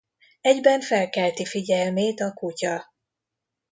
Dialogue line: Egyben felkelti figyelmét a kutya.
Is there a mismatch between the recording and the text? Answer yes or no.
no